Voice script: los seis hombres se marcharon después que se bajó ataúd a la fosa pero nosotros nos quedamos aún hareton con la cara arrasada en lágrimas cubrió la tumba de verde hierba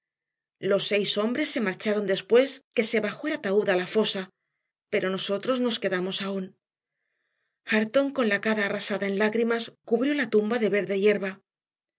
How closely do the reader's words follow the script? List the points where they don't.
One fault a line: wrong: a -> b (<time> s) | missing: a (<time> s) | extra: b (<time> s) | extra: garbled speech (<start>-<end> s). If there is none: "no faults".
no faults